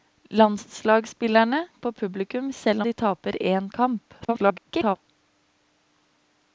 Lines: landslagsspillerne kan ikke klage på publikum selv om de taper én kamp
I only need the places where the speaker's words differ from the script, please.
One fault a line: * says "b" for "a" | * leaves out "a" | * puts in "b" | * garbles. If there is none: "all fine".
* leaves out "kan ikke klage"
* leaves out "om"
* garbles